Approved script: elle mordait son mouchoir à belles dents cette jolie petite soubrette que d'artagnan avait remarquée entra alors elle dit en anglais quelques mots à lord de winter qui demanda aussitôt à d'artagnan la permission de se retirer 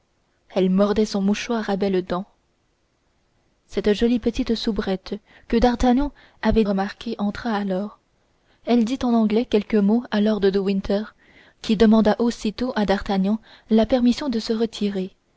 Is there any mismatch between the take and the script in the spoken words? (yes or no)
no